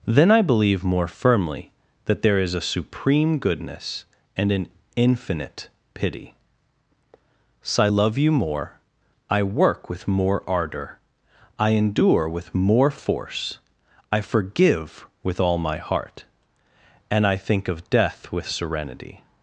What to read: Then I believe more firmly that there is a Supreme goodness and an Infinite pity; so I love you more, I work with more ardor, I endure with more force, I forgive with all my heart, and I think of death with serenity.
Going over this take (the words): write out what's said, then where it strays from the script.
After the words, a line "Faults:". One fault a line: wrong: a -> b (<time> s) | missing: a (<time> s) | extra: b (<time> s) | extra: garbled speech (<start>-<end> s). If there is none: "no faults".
Then I believe more firmly that there is a Supreme goodness and an Infinite pity; so I love you more, I work with more ardor, I endure with more force, I forgive with all my heart, and I think of death with serenity.
Faults:
no faults